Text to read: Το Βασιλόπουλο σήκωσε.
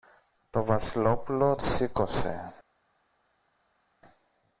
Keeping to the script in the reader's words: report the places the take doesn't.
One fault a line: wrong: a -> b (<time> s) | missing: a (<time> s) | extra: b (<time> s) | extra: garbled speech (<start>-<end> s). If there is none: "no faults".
no faults